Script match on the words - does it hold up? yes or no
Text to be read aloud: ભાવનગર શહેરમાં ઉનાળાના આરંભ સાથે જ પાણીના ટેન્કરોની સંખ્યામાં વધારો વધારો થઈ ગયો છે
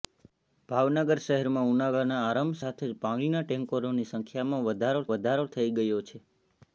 yes